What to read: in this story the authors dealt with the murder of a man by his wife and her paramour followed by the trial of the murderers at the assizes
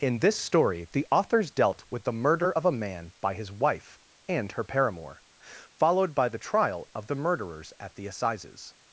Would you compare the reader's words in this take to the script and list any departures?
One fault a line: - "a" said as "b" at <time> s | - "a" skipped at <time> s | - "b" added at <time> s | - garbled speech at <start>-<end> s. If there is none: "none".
none